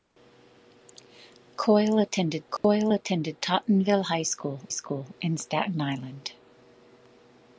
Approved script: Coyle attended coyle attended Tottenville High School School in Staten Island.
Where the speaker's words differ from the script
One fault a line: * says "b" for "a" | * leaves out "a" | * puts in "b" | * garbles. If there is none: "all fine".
all fine